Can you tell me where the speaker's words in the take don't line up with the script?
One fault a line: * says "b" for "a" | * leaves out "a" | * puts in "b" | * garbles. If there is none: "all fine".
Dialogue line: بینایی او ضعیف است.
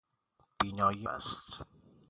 * leaves out "او ضعیف"